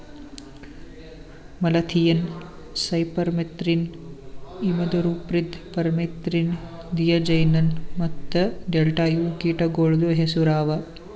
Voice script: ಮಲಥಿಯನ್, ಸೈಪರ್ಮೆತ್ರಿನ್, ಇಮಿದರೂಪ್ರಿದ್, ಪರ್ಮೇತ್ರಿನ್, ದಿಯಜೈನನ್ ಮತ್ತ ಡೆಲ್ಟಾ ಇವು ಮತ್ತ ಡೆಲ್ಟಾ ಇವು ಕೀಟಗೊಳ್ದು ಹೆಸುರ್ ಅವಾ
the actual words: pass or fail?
fail